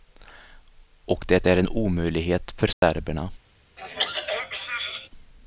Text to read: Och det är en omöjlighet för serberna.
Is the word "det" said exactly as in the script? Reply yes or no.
yes